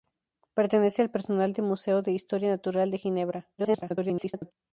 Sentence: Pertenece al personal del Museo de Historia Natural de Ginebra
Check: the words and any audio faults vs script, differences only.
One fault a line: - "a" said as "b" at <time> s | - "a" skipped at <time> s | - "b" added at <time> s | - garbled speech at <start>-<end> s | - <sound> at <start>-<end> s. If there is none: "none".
- garbled speech at 3.6-4.5 s